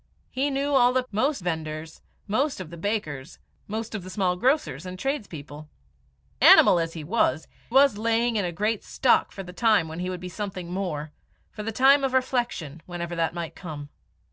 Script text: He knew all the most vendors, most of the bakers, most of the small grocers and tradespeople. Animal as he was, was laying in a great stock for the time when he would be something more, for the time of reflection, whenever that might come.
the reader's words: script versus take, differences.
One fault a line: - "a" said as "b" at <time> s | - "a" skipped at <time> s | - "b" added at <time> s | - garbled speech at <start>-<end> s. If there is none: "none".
none